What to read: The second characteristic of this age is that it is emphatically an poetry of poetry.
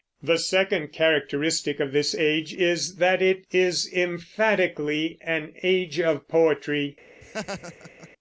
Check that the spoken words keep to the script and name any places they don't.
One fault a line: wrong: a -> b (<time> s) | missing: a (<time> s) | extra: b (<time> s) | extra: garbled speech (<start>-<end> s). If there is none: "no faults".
wrong: poetry -> age (5.6 s)